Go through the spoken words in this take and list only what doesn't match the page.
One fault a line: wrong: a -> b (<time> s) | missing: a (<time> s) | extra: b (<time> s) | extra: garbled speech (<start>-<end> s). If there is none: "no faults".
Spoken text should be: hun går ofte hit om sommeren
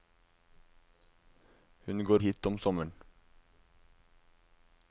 missing: ofte (2.2 s)